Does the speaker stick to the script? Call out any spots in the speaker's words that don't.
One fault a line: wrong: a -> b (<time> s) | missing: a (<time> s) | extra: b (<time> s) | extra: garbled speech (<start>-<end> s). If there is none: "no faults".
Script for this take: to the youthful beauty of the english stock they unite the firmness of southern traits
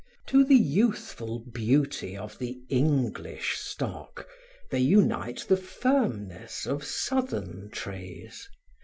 no faults